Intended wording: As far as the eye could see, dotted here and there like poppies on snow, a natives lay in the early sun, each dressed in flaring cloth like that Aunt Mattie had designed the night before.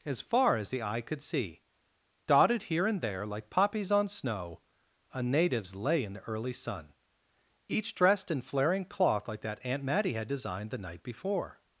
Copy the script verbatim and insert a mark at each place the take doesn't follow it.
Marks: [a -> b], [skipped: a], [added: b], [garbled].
As far as the eye could see, dotted here and there like poppies on snow, a natives lay in the early sun, each dressed in flaring cloth like that Aunt Mattie had designed the night before.